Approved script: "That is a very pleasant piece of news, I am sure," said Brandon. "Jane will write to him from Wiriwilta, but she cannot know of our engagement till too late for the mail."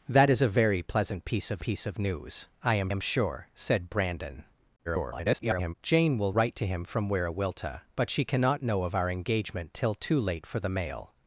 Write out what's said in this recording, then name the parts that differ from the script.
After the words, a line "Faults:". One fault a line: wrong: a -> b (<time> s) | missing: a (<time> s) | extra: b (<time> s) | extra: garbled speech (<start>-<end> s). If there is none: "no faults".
"That is a very pleasant piece of piece of news, I am am sure," said Brandon. [garbled] "Jane will write to him from Wiriwilta, but she cannot know of our engagement till too late for the mail."
Faults:
extra: piece of (1.6 s)
extra: am (2.9 s)
extra: garbled speech (4.9-5.7 s)